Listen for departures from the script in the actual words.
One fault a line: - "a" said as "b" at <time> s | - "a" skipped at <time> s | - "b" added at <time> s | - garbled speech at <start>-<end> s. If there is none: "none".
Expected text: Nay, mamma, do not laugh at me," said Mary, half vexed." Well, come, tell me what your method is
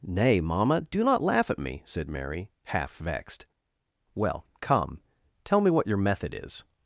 none